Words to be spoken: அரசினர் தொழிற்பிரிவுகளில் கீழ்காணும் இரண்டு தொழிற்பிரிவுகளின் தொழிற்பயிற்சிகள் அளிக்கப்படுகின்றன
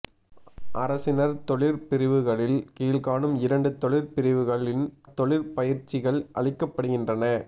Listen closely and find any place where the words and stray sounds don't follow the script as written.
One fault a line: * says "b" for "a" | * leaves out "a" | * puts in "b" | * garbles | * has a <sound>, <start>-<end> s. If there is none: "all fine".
all fine